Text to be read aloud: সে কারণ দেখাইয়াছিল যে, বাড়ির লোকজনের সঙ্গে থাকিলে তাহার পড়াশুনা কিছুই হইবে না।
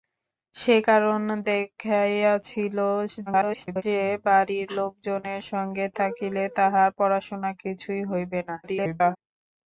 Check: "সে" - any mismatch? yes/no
no